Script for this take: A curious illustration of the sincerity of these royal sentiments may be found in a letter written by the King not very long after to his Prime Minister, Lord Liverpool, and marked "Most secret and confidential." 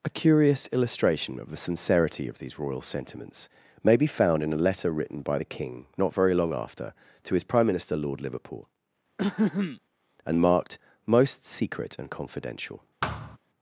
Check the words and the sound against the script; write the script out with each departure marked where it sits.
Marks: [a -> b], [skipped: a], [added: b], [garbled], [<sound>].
A curious illustration of the sincerity of these royal sentiments may be found in a letter written by the King not very long after to his Prime Minister, Lord Liverpool, [throat clearing] and marked "Most secret and confidential." [thud]